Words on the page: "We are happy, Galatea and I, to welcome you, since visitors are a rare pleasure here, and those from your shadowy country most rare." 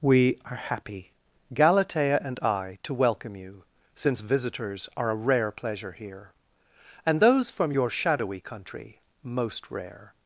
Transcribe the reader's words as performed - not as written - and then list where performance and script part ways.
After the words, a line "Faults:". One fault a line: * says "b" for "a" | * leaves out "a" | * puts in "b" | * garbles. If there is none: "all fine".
"We are happy, Galatea and I, to welcome you, since visitors are a rare pleasure here, and those from your shadowy country most rare."
Faults:
all fine